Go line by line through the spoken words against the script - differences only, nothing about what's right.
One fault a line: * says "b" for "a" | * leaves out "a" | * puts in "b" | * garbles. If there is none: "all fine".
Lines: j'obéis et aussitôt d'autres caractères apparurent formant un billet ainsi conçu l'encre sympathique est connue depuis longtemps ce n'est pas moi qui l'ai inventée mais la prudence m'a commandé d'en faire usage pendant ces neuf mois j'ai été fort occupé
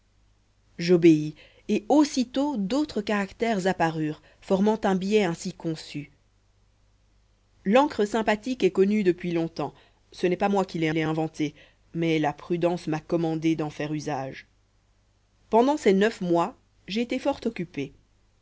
* puts in "l'ai"